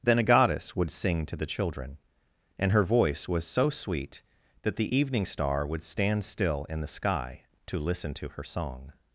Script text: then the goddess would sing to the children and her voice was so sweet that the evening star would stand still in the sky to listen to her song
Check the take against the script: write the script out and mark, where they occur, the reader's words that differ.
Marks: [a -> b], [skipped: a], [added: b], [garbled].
then [the -> a] goddess would sing to the children and her voice was so sweet that the evening star would stand still in the sky to listen to her song